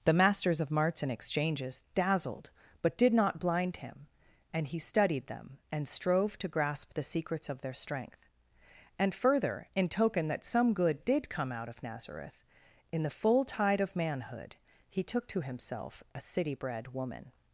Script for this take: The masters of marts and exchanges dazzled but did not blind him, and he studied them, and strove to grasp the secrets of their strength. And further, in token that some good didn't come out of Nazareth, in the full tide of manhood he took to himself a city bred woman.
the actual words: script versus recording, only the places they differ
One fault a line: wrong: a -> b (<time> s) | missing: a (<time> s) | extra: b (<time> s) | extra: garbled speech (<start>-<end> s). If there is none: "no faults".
wrong: didn't -> did (11.0 s)